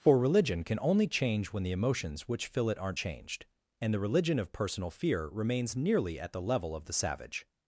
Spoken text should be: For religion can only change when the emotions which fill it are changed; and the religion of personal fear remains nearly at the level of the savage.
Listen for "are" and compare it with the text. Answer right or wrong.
wrong